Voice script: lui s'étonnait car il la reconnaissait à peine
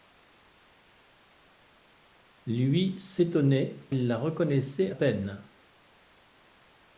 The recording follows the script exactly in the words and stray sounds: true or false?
false